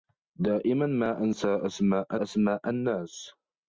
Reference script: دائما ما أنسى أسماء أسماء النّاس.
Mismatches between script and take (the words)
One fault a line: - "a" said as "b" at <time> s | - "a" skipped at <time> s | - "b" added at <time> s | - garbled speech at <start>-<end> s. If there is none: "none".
none